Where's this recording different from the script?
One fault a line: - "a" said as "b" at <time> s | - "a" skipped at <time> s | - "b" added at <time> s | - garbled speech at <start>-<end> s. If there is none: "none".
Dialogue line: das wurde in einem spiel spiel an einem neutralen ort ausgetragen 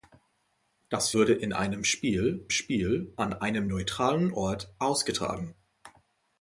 none